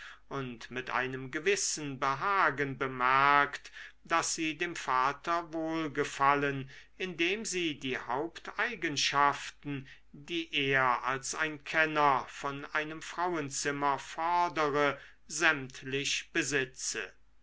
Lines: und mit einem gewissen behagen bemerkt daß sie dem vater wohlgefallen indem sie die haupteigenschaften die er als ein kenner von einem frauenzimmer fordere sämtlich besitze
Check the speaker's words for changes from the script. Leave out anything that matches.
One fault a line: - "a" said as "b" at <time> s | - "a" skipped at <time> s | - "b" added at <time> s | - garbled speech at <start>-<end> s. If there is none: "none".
none